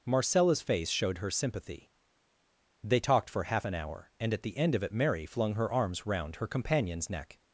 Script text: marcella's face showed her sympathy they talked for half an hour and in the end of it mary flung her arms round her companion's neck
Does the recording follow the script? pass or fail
fail